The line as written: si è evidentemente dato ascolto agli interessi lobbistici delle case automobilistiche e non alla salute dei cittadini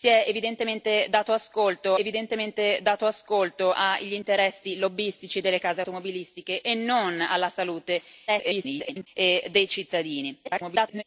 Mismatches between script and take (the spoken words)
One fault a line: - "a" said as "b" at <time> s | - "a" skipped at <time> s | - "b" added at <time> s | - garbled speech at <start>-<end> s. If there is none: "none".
- "evidentemente dato ascolto" added at 2.0 s
- garbled speech at 8.3-9.1 s
- garbled speech at 10.4-11.0 s